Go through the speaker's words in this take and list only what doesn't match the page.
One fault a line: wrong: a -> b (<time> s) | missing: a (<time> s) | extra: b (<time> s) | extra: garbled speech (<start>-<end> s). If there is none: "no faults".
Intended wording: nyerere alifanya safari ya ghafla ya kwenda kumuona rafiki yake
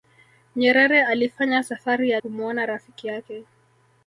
missing: ghafla ya kwenda (2.2 s)